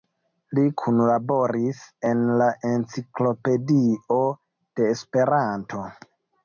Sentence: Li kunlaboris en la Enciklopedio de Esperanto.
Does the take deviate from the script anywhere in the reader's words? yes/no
no